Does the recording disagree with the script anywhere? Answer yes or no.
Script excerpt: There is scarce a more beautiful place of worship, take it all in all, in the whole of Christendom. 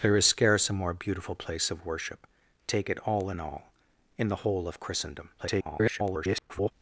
yes